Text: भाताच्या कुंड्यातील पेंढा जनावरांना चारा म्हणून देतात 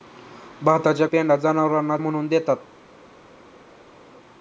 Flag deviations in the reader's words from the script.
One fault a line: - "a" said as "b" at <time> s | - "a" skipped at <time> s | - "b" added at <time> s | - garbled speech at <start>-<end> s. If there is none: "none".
- "कुंड्यातील" skipped at 1.1 s
- "चारा" skipped at 2.0 s